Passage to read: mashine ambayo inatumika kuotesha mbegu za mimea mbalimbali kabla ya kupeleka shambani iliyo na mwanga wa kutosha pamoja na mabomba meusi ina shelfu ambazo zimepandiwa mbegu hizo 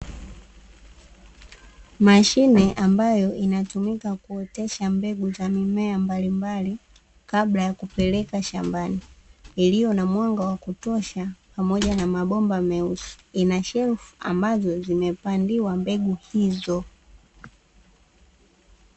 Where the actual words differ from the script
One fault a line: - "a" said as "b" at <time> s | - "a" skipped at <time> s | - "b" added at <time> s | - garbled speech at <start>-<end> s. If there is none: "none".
none